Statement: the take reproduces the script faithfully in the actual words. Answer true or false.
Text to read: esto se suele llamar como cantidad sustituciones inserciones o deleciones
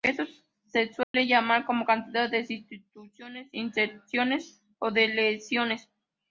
false